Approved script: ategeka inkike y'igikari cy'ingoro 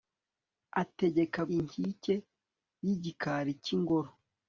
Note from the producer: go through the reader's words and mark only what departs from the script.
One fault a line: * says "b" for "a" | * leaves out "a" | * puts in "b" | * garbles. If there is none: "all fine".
all fine